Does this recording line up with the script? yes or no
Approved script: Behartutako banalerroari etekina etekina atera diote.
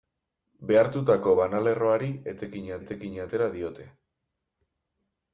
yes